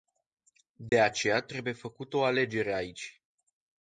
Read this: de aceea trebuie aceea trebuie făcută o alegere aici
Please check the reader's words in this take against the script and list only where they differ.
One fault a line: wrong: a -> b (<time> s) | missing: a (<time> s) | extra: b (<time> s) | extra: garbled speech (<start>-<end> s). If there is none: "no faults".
missing: aceea trebuie (1.7 s)